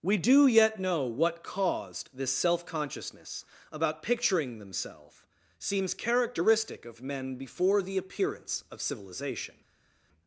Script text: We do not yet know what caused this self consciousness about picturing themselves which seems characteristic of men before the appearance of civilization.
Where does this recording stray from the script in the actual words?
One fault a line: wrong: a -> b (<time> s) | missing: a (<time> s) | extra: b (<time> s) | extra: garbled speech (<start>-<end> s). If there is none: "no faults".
missing: not (0.5 s)
missing: which (5.3 s)